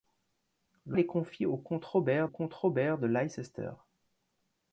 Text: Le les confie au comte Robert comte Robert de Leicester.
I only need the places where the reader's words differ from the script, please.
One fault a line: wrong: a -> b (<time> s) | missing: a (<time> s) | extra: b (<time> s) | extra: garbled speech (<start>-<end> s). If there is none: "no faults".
no faults